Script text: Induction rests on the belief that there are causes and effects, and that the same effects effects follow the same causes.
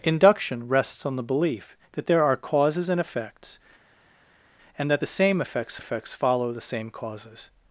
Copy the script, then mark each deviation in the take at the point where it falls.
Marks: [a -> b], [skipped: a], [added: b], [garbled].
Induction rests on the belief that there are causes and effects, and that the same effects effects follow the same causes.